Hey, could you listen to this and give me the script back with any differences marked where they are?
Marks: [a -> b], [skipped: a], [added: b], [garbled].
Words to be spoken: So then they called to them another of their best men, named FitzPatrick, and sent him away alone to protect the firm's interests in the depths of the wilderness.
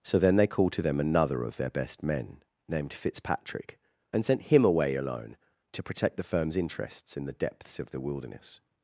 So then they called to them another of their best men, named FitzPatrick, and sent him away alone to protect the firm's interests in the depths of the wilderness.